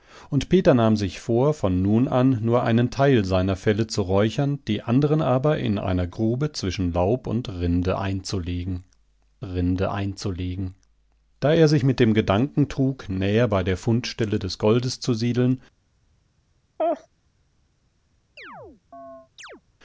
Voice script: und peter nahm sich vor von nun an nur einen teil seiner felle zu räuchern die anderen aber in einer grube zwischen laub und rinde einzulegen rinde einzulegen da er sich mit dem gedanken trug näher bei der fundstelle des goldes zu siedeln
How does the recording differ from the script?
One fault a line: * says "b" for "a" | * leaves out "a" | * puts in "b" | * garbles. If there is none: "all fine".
all fine